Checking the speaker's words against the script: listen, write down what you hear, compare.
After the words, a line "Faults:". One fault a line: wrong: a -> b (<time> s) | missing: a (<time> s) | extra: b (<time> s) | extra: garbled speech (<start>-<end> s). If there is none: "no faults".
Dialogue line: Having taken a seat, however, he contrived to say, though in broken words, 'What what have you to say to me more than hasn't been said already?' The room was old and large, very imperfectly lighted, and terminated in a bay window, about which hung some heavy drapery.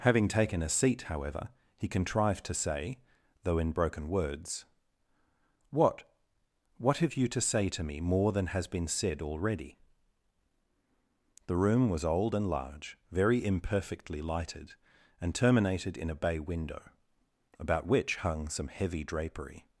Having taken a seat, however, he contrived to say, though in broken words, 'What what have you to say to me more than has been said already?' The room was old and large, very imperfectly lighted, and terminated in a bay window, about which hung some heavy drapery.
Faults:
wrong: hasn't -> has (8.5 s)